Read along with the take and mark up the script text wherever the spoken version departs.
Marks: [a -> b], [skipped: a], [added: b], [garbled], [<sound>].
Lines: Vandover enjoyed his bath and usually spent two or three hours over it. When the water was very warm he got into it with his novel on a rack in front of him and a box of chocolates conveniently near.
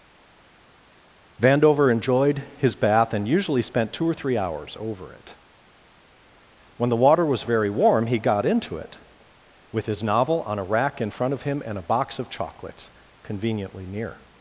Vandover enjoyed his bath and usually spent two or three hours over it. When the water was very warm he got into it with his novel on a rack in front of him and a box of chocolates conveniently near.